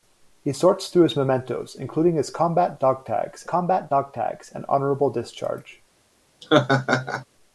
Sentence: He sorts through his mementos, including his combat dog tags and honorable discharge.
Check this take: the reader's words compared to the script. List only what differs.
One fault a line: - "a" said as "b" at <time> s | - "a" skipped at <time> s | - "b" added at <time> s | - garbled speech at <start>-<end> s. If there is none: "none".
- "combat dog tags" added at 3.4 s